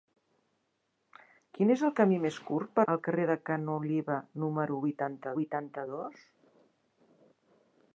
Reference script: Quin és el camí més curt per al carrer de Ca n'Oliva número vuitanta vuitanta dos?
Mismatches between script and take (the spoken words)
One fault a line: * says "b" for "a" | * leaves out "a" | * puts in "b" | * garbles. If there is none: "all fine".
all fine